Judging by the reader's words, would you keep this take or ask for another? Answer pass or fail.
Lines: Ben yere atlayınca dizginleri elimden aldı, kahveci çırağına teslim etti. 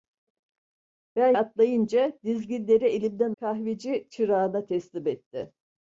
fail